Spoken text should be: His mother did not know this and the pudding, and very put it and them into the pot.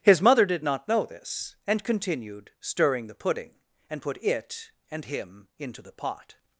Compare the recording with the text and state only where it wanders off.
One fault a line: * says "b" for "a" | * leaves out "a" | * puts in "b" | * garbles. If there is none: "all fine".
* puts in "continued stirring"
* leaves out "very"
* says "him" for "them"